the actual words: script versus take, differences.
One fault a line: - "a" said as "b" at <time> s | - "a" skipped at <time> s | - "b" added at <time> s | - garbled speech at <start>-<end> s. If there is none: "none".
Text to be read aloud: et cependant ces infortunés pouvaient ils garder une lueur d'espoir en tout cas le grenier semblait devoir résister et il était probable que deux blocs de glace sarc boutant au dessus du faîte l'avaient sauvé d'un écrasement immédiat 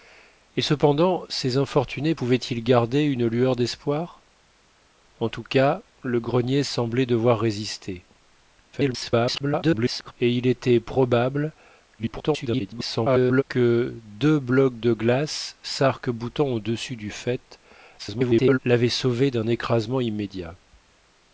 - garbled speech at 8.7-10.1 s
- garbled speech at 12.0-13.4 s
- garbled speech at 18.0-18.6 s